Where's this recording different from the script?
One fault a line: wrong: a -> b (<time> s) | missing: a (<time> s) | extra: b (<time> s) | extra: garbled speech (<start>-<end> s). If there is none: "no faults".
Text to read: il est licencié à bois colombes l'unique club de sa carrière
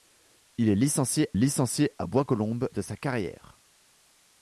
extra: licencié (1.4 s)
missing: l'unique club (2.7 s)